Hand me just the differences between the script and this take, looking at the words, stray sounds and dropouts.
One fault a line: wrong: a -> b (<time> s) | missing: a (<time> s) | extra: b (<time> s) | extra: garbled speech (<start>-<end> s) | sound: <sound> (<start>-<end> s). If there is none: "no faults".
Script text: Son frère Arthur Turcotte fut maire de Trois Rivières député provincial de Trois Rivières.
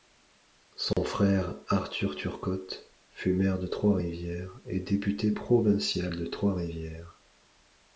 sound: dropout (0.9-1.0 s)
extra: et (4.6 s)